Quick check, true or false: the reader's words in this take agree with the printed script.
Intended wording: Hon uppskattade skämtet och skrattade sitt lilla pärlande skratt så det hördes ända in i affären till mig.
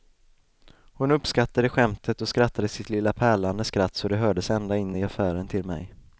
true